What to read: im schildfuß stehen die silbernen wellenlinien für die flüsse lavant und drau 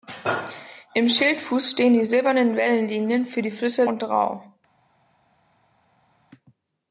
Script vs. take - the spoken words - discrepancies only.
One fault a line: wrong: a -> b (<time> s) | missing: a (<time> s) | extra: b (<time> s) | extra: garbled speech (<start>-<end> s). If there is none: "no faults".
missing: lavant (3.9 s)